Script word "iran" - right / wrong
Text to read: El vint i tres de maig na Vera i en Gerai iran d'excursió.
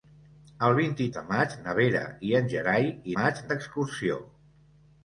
wrong